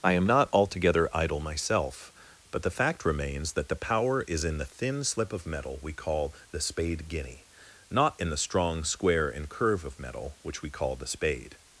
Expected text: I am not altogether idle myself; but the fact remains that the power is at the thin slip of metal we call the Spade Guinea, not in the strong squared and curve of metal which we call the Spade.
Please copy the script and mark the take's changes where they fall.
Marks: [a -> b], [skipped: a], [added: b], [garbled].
I am not altogether idle myself; but the fact remains that the power is [at -> in] the thin slip of metal we call the Spade Guinea, not in the strong [squared -> square] and curve of metal which we call the Spade.